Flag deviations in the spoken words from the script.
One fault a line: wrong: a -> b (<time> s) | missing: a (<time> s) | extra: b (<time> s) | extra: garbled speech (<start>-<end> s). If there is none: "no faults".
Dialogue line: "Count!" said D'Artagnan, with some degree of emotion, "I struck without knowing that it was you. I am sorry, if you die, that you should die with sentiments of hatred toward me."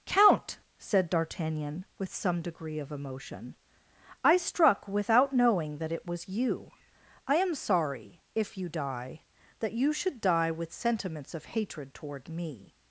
no faults